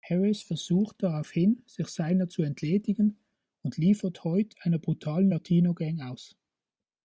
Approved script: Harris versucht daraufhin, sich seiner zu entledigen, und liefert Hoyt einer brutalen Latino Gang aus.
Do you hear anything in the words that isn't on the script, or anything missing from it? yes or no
no